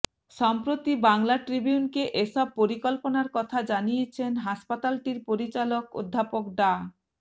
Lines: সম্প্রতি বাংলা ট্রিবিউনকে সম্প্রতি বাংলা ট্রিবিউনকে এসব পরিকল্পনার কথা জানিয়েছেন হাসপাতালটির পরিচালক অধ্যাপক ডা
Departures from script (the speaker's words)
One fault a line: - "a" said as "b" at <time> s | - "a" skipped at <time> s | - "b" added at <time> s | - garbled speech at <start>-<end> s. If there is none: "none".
- "সম্প্রতি বাংলা ট্রিবিউনকে" skipped at 2.0 s